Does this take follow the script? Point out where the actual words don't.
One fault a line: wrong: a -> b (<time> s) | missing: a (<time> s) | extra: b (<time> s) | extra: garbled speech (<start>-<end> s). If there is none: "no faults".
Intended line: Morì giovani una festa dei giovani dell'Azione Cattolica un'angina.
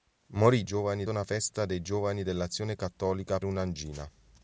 no faults